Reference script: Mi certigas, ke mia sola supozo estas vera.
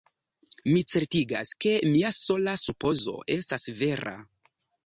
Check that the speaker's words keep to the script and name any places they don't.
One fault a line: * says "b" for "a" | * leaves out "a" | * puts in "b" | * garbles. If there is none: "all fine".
all fine